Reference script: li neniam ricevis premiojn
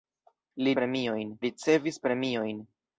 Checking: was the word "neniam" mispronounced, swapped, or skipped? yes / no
yes